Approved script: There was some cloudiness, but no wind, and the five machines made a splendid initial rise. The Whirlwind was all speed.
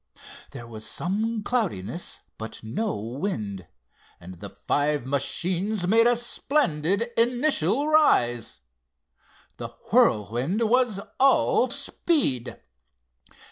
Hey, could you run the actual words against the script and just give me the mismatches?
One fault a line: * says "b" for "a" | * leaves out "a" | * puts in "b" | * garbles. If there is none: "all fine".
all fine